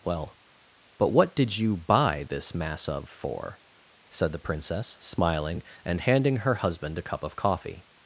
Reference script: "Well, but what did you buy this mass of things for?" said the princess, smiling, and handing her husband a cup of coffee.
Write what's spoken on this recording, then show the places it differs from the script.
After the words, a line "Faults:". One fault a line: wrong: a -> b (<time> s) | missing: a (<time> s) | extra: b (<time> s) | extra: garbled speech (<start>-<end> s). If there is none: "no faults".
"Well, but what did you buy this mass of for?" said the princess, smiling, and handing her husband a cup of coffee.
Faults:
missing: things (3.1 s)